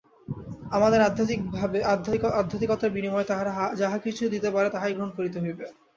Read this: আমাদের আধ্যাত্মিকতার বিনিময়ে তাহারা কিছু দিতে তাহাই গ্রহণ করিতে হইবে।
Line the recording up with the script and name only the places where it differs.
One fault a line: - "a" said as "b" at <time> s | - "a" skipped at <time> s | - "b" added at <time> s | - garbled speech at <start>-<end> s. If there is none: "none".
- "যাহা" added at 3.7 s
- "পারে" added at 4.5 s